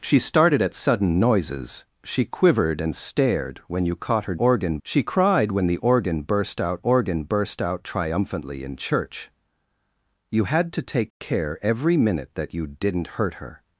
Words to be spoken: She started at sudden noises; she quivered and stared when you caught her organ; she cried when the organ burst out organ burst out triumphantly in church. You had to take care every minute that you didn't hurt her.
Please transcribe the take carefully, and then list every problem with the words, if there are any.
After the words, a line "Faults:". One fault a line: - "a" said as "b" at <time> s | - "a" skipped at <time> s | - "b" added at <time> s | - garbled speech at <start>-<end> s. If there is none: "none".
She started at sudden noises; she quivered and stared when you caught her organ; she cried when the organ burst out organ burst out triumphantly in church. You had to take care every minute that you didn't hurt her.
Faults:
none